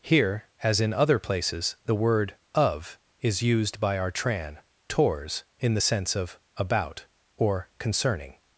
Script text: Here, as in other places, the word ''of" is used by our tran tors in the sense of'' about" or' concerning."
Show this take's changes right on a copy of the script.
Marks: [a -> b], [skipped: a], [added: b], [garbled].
Here, as in other places, the word ''of" is used by our tran tors in the sense of'' about" or' concerning."